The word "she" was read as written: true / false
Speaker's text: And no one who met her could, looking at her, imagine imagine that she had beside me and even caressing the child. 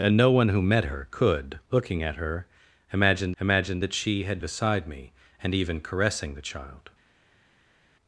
true